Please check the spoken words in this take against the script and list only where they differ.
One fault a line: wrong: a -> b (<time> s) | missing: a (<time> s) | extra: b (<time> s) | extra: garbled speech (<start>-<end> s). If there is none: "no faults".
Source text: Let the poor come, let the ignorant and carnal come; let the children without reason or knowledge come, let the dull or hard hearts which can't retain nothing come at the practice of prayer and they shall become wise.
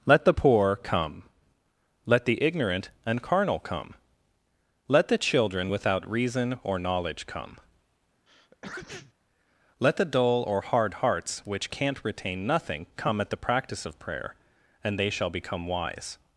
no faults